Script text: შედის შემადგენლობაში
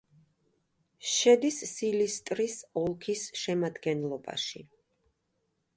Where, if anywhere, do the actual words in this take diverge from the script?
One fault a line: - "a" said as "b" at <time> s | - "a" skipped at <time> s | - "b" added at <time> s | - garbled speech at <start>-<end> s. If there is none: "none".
- "სილისტრის ოლქის" added at 1.7 s